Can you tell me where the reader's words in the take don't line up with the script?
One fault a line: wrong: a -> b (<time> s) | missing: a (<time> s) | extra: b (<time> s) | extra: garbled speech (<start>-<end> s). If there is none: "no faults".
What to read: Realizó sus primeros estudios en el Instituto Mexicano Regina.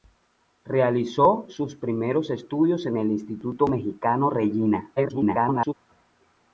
extra: garbled speech (5.0-5.7 s)